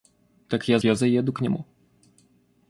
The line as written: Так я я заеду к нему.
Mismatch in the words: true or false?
false